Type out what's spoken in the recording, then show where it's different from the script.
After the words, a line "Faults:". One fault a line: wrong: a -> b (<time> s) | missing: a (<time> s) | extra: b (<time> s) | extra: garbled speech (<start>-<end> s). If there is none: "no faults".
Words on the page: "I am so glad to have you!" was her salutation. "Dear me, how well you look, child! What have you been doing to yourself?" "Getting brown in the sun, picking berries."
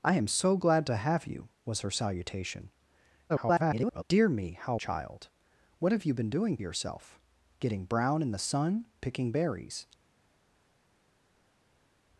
"I am so glad to have you!" was her salutation. [garbled] "Dear me, how child! What have you been doing yourself?" "Getting brown in the sun, picking berries."
Faults:
extra: garbled speech (3.3-4.0 s)
missing: well you look (4.8 s)
missing: to (6.6 s)